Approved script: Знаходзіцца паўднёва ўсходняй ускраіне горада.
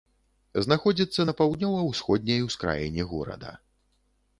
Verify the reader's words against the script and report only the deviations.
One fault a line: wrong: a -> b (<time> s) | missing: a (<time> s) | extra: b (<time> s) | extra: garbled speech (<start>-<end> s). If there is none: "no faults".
extra: на (1.2 s)